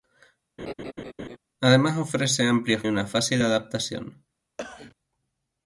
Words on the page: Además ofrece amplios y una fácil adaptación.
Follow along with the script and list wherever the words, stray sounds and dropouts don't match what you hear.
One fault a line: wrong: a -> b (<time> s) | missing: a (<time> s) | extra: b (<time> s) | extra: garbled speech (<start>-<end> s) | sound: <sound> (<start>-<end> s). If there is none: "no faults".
sound: laugh (0.6-1.4 s)
sound: cough (4.6-5.0 s)